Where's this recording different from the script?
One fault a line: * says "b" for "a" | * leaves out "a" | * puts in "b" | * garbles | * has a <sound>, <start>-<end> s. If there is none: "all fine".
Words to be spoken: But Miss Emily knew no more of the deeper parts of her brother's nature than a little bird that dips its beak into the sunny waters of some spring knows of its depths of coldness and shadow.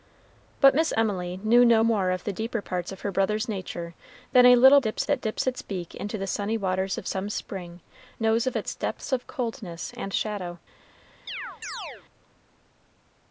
* says "dips" for "bird"
* has a chirp, 11.3-12.0 s